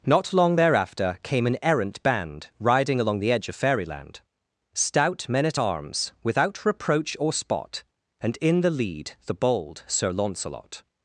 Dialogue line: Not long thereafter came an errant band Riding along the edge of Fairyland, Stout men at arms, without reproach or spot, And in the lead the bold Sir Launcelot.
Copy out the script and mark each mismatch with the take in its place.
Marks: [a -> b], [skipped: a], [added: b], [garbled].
Not long thereafter came an errant band Riding along the edge of Fairyland, Stout men at arms, without reproach or spot, And in the lead the bold Sir Launcelot.